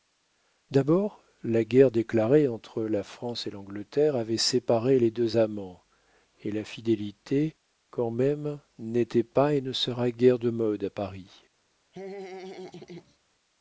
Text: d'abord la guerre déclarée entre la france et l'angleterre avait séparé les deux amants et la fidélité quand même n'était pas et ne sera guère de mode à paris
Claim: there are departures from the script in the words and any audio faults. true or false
true